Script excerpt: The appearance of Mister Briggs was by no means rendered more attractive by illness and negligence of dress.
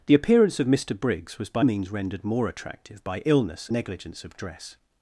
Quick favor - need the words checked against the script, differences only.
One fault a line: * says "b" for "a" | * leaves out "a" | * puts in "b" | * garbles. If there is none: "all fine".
* leaves out "no"
* leaves out "and"